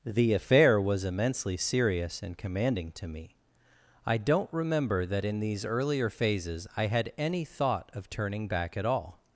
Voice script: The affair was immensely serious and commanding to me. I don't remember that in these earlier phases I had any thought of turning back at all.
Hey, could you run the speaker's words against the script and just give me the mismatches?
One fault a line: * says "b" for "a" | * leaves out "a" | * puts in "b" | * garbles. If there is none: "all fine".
all fine